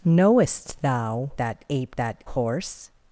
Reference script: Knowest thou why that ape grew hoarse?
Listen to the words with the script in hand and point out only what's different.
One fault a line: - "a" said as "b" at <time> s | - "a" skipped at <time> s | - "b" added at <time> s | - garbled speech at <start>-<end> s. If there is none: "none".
- "why" skipped at 1.3 s
- "grew" said as "that" at 2.0 s